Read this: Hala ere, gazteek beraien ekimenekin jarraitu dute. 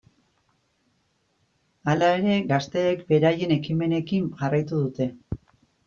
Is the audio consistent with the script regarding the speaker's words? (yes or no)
yes